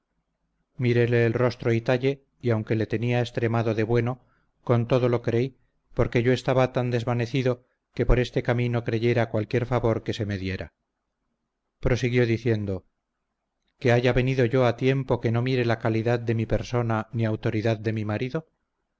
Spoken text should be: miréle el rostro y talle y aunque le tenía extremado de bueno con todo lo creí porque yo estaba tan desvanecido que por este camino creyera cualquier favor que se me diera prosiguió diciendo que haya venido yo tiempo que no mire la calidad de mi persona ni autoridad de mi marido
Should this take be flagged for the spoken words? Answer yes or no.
yes